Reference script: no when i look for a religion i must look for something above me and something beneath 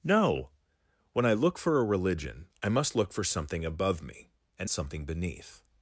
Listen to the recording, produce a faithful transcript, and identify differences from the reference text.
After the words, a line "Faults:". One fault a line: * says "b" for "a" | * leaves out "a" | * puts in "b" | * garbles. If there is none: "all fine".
no when i look for a religion i must look for something above me and something beneath
Faults:
all fine